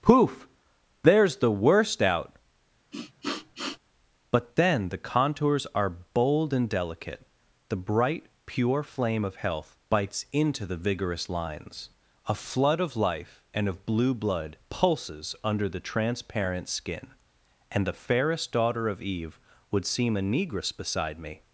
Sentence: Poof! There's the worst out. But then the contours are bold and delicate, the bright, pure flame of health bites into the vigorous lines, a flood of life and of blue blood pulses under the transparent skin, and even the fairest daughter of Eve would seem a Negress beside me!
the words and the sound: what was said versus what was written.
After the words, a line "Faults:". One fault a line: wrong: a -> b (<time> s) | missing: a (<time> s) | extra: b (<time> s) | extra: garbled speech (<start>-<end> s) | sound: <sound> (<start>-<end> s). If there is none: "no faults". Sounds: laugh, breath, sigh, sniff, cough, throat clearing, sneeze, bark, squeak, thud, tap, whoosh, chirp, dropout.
Poof! There's the worst out. But then the contours are bold and delicate, the bright, pure flame of health bites into the vigorous lines, a flood of life and of blue blood pulses under the transparent skin, and the fairest daughter of Eve would seem a Negress beside me!
Faults:
sound: sniff (2.9-3.8 s)
missing: even (17.9 s)